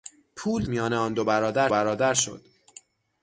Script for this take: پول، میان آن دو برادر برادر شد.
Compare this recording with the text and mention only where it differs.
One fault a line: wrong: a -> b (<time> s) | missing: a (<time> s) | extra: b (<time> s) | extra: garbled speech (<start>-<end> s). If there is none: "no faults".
no faults